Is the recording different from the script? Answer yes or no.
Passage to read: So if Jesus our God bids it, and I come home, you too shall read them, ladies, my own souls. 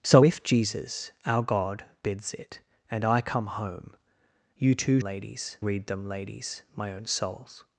yes